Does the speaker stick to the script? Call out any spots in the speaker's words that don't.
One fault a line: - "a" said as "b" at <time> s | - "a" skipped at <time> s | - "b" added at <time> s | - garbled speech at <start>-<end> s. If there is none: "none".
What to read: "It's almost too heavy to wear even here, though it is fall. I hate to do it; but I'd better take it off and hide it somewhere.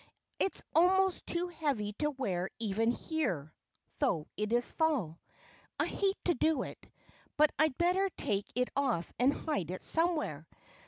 none